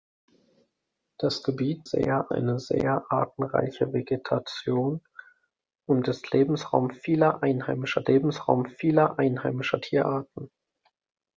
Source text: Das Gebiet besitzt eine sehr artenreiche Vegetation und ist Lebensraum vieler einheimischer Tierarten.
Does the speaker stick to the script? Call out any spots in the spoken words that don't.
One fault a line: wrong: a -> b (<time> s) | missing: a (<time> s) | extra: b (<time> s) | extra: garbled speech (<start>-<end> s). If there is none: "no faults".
wrong: besitzt -> sehr (1.8 s)
extra: Lebensraum vieler einheimischer (8.1 s)